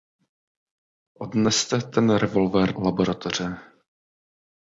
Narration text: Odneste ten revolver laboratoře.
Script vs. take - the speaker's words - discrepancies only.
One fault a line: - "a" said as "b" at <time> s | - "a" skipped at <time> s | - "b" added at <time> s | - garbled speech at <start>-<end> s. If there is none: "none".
none